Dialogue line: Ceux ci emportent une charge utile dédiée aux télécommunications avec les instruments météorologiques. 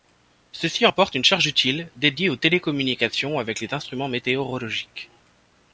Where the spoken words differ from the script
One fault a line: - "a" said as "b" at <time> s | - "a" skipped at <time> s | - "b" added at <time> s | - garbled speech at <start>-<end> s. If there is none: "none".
none